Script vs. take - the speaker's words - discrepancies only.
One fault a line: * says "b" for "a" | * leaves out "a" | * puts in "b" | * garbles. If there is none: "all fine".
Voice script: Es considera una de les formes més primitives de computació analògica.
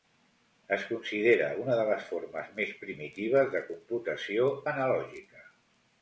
all fine